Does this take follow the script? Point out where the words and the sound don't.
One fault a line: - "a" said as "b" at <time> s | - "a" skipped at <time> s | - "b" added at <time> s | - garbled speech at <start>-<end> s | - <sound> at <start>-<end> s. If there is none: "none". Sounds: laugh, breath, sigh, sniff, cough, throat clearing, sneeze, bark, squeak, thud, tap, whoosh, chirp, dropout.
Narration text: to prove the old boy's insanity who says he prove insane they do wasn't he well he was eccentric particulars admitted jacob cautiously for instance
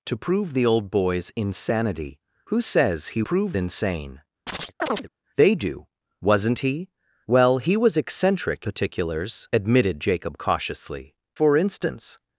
- chirp at 4.5-5.1 s